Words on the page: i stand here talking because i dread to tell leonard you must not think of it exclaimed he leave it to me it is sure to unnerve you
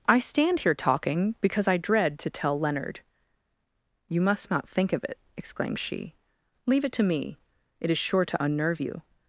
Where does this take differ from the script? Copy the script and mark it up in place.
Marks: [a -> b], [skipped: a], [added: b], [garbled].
i stand here talking because i dread to tell leonard you must not think of it exclaimed [he -> she] leave it to me it is sure to unnerve you